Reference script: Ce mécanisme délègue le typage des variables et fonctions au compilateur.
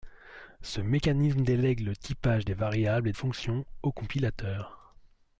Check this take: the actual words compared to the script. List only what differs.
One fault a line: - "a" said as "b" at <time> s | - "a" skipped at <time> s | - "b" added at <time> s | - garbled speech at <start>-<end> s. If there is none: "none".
none